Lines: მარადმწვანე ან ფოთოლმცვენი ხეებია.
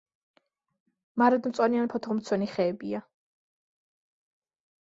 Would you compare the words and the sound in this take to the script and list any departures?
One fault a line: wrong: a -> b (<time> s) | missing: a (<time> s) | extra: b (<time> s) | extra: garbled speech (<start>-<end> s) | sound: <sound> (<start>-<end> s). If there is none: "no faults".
no faults